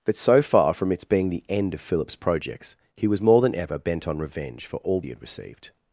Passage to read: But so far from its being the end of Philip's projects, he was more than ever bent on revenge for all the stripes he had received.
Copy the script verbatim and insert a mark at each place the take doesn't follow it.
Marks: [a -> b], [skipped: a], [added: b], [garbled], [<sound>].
But so far from its being the end of Philip's projects, he was more than ever bent on revenge for all [skipped: the stripes] he had received.